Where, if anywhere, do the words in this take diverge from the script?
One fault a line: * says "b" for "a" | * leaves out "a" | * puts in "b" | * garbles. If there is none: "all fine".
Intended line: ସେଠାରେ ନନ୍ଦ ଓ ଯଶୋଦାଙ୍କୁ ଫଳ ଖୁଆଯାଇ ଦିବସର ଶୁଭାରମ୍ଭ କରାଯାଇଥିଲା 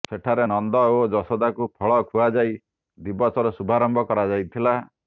all fine